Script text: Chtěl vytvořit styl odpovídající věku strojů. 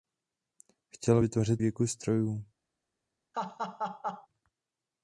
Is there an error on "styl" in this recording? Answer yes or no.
yes